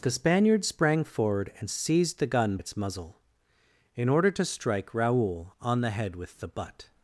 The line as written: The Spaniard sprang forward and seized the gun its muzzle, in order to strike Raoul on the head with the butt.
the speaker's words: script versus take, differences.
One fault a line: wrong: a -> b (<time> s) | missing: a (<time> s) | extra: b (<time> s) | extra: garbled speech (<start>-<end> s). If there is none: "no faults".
no faults